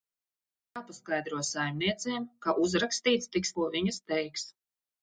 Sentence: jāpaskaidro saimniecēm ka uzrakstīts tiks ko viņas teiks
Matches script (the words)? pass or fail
pass